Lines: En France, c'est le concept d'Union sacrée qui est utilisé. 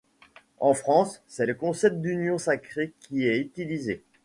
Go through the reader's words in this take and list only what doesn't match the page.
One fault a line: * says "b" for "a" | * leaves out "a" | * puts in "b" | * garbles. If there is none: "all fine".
all fine